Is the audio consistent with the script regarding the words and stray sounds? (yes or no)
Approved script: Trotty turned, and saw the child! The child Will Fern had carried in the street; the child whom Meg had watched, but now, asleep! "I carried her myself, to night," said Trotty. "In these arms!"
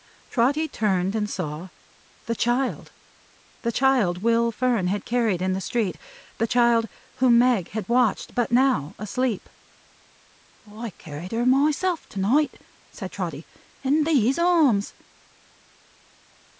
yes